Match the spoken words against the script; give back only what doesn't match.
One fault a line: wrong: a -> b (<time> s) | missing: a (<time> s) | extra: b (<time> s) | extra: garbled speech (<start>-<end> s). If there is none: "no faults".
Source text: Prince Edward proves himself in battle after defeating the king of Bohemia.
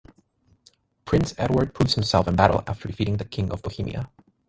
no faults